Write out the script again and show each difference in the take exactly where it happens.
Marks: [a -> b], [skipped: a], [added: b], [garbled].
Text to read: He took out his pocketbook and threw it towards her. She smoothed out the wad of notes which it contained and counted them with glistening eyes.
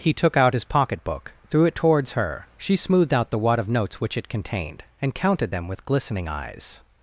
He took out his pocketbook [skipped: and] threw it towards her. She smoothed out the wad of notes which it contained and counted them with glistening eyes.